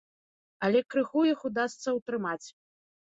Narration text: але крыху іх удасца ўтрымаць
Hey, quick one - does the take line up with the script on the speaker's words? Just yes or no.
yes